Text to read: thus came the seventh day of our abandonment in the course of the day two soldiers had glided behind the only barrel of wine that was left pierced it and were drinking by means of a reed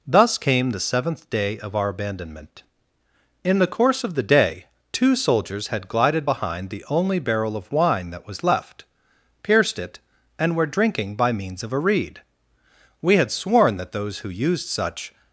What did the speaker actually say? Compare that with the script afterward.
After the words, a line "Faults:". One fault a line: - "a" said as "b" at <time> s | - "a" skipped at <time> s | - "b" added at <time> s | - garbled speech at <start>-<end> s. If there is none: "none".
thus came the seventh day of our abandonment in the course of the day two soldiers had glided behind the only barrel of wine that was left pierced it and were drinking by means of a reed we had sworn that those who used such
Faults:
- "we had sworn that those who used such" added at 13.0 s